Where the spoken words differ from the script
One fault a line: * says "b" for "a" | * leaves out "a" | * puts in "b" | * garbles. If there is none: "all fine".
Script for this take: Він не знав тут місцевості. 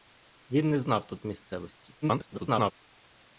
* garbles